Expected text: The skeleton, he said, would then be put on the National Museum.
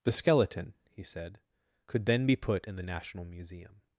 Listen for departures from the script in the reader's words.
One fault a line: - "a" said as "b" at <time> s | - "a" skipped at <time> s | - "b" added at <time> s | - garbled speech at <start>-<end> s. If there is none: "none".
- "would" said as "could" at 1.9 s
- "on" said as "in" at 2.6 s